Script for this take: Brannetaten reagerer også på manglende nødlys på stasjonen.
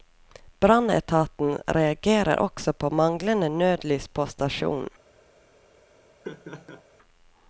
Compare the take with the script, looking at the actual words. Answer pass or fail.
pass